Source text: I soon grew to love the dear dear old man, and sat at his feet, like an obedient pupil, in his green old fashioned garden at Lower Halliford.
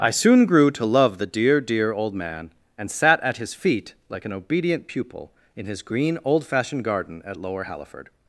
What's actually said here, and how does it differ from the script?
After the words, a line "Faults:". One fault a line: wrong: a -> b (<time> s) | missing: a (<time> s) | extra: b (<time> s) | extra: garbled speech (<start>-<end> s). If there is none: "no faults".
I soon grew to love the dear dear old man, and sat at his feet, like an obedient pupil, in his green old fashioned garden at Lower Halliford.
Faults:
no faults